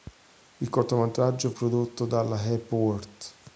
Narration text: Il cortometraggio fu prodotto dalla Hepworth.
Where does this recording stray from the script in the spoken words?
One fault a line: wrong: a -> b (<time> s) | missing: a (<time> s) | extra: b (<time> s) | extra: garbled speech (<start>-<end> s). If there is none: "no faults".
missing: fu (1.5 s)